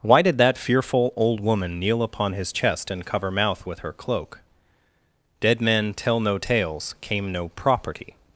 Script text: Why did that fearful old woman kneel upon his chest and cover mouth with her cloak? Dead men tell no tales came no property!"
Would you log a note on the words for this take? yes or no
no